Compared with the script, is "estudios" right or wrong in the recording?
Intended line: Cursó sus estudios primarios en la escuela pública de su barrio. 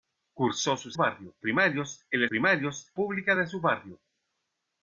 wrong